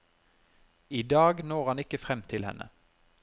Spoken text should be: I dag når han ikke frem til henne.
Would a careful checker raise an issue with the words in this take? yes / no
no